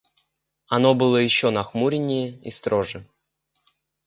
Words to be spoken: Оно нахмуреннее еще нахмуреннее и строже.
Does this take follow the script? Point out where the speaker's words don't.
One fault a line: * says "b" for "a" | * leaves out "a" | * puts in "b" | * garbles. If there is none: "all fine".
* says "было" for "нахмуреннее"